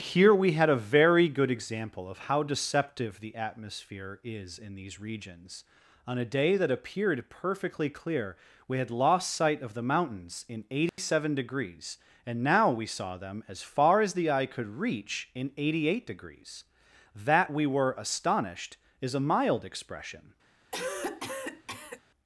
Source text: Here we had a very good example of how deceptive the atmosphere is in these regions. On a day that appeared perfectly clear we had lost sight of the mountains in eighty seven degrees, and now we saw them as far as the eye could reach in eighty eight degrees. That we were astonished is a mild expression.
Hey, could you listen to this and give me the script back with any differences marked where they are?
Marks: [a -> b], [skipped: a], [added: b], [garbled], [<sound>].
Here we had a very good example of how deceptive the atmosphere is in these regions. On a day that appeared perfectly clear we had lost sight of the mountains in eighty [dropout] seven degrees, and now we saw them as far as the eye could reach in eighty eight degrees. That we were astonished is a mild expression. [cough]